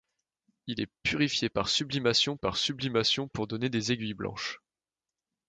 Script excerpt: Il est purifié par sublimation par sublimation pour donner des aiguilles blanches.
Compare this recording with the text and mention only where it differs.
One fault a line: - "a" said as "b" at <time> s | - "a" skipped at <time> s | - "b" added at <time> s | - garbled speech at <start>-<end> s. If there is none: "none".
none